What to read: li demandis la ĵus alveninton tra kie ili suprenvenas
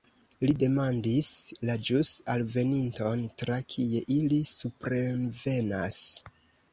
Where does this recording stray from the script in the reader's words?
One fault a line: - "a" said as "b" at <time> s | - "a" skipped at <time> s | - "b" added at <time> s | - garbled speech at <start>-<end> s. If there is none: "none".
none